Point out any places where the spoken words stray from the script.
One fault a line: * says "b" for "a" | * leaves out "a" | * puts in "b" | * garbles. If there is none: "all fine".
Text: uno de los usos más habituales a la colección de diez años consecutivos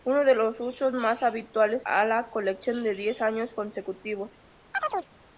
all fine